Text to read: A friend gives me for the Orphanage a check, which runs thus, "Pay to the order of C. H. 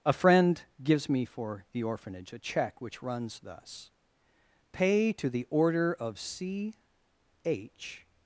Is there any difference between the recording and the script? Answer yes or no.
no